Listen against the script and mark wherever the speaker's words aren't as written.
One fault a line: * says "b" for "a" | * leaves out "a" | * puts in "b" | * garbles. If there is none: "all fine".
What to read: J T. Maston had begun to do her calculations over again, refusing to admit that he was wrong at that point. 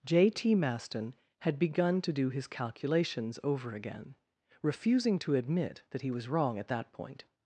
* says "his" for "her"